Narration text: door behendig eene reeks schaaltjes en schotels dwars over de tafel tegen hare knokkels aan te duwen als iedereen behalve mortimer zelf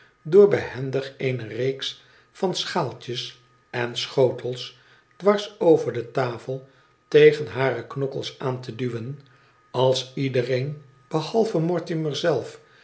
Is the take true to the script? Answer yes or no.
no